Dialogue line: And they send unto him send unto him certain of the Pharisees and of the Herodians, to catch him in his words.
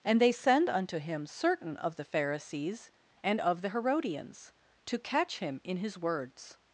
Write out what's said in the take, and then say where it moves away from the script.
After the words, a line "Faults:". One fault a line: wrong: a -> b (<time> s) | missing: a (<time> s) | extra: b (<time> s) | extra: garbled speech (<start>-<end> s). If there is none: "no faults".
And they send unto him certain of the Pharisees and of the Herodians, to catch him in his words.
Faults:
missing: send unto him (1.2 s)